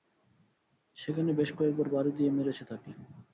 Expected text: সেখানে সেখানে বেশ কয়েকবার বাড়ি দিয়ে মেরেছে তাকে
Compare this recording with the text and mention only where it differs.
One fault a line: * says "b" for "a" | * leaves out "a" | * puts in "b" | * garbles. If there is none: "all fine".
* leaves out "সেখানে"